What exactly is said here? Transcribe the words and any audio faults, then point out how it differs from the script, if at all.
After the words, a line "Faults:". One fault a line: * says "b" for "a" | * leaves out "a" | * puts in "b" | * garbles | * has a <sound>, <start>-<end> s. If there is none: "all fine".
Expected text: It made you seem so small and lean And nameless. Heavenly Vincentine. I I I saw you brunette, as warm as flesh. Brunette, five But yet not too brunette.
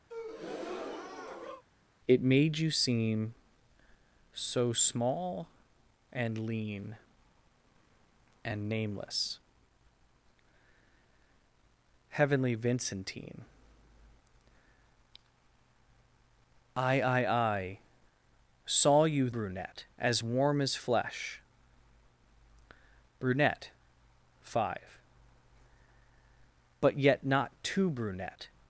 It made you seem so small and lean And nameless. Heavenly Vincentine. I I I saw you brunette, as warm as flesh. Brunette, five But yet not too brunette.
Faults:
* has a breath, 0.1-1.6 s